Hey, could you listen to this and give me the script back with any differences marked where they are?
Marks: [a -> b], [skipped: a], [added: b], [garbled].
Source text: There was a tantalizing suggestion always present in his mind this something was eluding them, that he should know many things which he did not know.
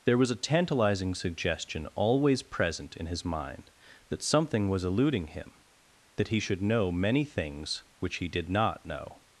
There was a tantalizing suggestion always present in his mind [this -> that] something was eluding [them, -> him] that he should know many things which he did not know.